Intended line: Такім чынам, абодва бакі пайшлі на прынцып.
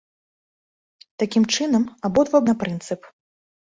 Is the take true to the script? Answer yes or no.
no